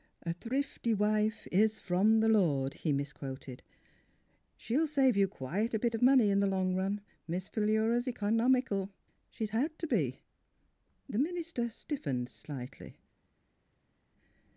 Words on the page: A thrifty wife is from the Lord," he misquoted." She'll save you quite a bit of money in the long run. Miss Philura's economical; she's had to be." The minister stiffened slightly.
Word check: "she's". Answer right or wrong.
right